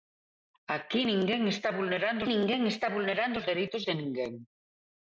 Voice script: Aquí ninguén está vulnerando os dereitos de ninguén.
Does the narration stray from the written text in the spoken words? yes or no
yes